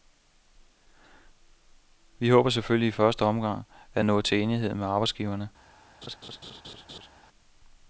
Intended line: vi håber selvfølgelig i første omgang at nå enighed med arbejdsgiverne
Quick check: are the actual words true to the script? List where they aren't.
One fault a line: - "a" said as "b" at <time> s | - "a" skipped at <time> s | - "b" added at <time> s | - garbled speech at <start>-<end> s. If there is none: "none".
- "til" added at 4.2 s